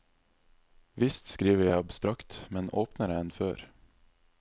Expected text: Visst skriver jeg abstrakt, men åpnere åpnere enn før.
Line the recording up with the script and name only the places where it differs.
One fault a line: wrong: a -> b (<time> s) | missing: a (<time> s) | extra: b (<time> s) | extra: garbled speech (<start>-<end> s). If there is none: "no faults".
missing: åpnere (3.2 s)